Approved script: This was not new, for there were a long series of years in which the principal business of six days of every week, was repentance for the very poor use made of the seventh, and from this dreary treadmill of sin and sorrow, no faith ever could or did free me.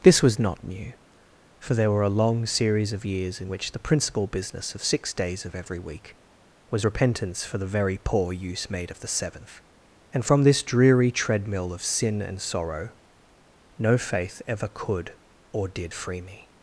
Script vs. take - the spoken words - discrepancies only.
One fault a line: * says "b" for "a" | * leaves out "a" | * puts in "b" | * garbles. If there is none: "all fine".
all fine